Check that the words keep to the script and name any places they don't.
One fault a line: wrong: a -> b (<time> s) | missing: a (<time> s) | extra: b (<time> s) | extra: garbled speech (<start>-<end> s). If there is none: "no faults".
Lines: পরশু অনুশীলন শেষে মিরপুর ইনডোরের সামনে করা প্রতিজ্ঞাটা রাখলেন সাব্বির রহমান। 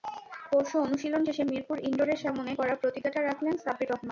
no faults